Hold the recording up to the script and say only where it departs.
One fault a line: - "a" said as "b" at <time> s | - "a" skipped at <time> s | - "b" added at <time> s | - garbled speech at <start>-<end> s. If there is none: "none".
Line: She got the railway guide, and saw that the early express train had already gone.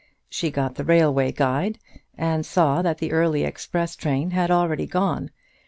none